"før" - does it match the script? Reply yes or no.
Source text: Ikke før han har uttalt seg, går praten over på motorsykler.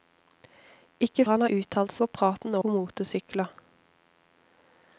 no